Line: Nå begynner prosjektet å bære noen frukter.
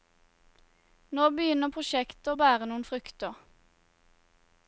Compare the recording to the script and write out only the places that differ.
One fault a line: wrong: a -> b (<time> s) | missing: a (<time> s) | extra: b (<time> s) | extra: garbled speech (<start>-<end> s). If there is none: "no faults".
no faults